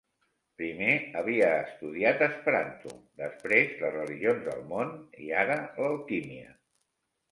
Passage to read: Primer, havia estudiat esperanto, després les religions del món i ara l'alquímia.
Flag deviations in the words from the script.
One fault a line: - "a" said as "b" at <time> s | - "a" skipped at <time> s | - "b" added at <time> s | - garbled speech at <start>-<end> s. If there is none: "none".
none